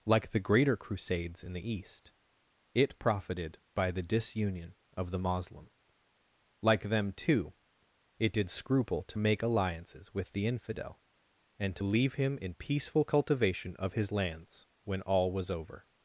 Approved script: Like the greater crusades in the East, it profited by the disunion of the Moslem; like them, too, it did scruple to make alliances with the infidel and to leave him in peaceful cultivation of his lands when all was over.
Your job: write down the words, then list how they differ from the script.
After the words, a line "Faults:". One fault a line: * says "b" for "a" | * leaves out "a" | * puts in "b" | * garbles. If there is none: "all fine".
Like the greater crusades in the East, it profited by the disunion of the Moslem; like them, too, it did scruple to make alliances with the infidel and to leave him in peaceful cultivation of his lands when all was over.
Faults:
all fine